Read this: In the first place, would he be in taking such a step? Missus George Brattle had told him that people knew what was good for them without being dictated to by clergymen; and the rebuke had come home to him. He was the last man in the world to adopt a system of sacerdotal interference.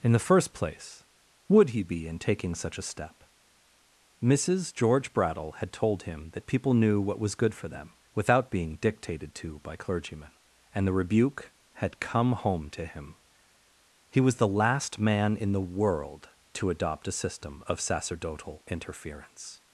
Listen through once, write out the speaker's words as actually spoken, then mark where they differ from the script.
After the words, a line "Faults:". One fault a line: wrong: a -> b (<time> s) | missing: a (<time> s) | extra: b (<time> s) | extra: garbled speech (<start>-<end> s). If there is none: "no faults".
In the first place, would he be in taking such a step? Missus George Brattle had told him that people knew what was good for them without being dictated to by clergymen; and the rebuke had come home to him. He was the last man in the world to adopt a system of sacerdotal interference.
Faults:
no faults